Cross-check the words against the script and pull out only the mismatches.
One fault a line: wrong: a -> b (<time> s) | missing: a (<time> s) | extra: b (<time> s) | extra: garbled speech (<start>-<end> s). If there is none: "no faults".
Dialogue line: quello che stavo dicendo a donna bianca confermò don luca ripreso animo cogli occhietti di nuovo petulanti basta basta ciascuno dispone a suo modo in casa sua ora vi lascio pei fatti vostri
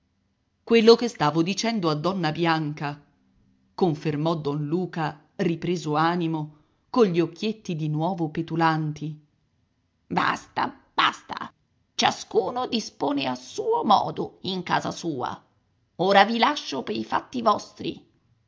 no faults